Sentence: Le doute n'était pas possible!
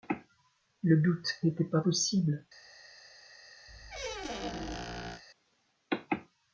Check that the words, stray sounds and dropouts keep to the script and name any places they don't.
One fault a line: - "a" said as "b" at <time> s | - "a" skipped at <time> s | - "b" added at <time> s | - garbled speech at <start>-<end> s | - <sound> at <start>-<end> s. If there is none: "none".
- squeak at 3.7-5.2 s